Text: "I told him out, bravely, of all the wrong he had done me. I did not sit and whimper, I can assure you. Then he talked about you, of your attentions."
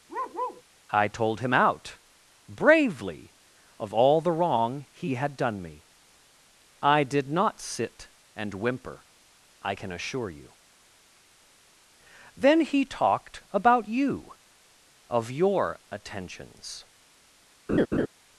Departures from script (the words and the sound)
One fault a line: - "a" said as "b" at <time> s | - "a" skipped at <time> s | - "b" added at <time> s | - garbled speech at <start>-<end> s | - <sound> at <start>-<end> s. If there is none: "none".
- bark at 0.1-0.6 s
- laugh at 17.7-18.1 s